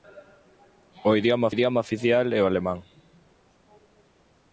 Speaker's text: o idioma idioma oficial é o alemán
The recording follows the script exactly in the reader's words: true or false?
true